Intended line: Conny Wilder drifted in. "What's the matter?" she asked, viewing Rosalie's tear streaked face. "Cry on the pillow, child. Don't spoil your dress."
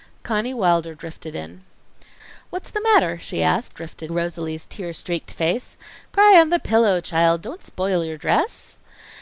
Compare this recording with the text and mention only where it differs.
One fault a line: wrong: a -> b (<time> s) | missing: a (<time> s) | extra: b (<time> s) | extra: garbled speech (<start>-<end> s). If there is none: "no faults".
wrong: viewing -> drifted (3.7 s)